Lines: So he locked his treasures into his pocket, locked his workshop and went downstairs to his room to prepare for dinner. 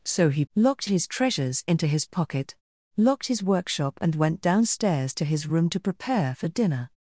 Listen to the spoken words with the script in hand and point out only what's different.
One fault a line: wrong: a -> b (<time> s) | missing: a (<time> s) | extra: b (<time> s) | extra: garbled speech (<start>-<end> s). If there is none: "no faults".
no faults